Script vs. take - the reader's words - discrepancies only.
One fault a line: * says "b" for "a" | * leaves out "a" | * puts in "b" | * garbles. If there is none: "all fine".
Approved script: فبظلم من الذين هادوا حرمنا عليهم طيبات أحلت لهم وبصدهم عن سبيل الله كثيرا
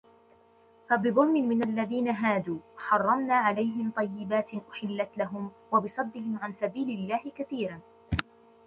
all fine